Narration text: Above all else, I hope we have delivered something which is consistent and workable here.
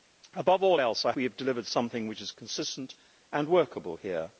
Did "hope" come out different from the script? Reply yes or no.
yes